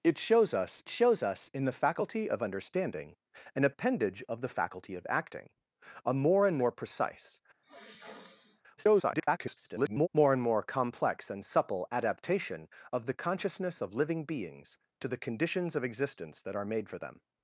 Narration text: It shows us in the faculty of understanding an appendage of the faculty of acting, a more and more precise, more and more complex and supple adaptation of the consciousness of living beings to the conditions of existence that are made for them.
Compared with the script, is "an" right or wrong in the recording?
right